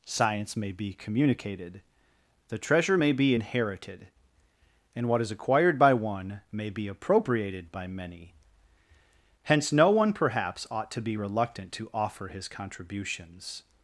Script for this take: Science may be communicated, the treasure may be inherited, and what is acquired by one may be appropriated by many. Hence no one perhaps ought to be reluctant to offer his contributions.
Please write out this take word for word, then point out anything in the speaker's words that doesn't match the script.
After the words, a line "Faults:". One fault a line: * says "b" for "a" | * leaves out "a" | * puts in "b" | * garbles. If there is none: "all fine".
Science may be communicated, the treasure may be inherited, and what is acquired by one may be appropriated by many. Hence no one perhaps ought to be reluctant to offer his contributions.
Faults:
all fine